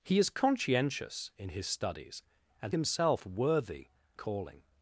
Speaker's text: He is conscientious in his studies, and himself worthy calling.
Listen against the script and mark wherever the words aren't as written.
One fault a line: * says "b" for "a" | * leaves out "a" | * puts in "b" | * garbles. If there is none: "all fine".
all fine